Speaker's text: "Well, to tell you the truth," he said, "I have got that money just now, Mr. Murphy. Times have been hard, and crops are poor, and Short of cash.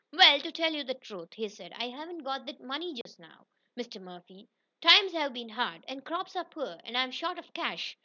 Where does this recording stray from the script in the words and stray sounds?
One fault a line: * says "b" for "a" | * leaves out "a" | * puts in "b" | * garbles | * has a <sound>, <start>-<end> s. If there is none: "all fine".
* says "haven't" for "have"
* has a dropout, 3.0-3.1 s
* puts in "I'm"